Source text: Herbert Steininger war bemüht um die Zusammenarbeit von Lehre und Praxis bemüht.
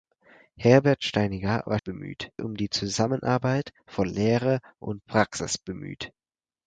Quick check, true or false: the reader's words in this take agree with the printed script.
true